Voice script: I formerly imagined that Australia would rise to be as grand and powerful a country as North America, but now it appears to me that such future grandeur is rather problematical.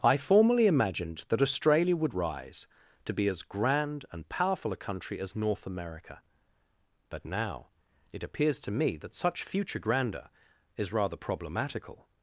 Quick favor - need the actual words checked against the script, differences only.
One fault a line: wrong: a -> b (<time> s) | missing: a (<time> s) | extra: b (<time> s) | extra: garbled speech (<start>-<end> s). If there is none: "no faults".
no faults